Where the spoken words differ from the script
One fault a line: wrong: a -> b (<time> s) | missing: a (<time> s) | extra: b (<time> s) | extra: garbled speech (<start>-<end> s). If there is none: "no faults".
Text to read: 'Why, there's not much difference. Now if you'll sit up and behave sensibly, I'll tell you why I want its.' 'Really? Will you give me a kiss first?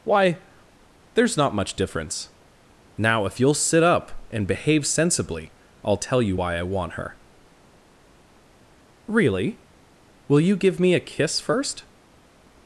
wrong: its -> her (6.9 s)